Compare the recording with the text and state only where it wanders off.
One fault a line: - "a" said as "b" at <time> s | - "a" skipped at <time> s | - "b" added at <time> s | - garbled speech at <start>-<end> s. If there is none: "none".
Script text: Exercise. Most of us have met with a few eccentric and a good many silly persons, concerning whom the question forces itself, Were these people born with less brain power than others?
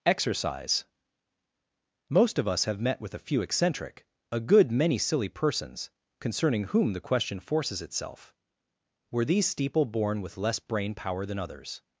- "and" skipped at 4.1 s
- "people" said as "steeple" at 9.4 s